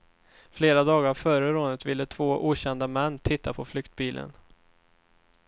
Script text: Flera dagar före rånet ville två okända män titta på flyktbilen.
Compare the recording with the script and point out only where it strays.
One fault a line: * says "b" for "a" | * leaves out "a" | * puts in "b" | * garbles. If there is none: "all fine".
all fine